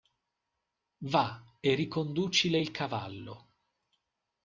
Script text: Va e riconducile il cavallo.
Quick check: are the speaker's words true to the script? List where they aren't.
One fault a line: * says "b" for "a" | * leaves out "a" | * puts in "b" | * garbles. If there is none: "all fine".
all fine